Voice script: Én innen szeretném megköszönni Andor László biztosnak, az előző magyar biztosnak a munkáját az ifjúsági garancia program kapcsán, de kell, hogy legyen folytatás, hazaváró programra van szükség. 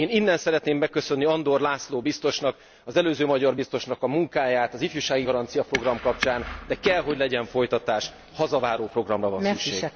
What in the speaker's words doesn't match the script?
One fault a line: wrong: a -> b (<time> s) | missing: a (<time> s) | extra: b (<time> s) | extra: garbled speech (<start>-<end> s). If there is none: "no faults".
no faults